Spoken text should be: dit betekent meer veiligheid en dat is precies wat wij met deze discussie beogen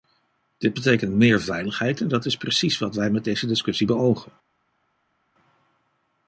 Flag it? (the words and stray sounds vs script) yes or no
no